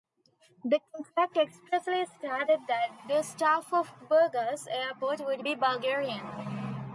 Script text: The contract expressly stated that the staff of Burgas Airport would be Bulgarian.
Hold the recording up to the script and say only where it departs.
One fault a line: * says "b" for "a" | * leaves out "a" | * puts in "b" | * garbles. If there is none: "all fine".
all fine